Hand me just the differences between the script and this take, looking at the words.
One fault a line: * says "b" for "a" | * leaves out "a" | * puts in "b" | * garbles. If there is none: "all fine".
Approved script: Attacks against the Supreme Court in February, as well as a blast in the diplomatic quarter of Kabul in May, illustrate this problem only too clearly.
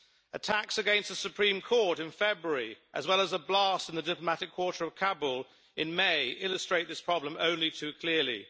all fine